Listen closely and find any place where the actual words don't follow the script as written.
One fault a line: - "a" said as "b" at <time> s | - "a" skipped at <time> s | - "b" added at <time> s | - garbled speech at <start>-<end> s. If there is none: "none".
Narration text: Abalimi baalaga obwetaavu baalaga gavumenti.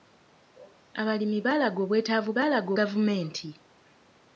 none